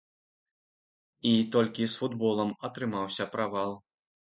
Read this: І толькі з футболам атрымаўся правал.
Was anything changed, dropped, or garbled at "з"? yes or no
no